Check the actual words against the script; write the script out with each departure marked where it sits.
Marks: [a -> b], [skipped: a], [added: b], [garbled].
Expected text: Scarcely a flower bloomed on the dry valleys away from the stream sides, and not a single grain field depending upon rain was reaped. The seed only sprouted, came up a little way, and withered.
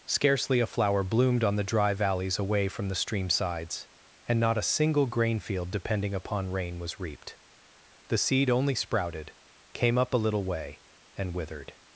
Scarcely a flower bloomed on the dry valleys away from the stream sides, and not a single grain field depending upon rain was reaped. The seed only sprouted, came up a little way, and withered.